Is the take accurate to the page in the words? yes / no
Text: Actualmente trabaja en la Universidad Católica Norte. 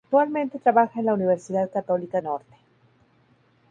yes